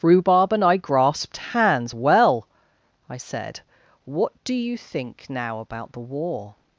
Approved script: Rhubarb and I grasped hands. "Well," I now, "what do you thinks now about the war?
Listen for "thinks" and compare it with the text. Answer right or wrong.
wrong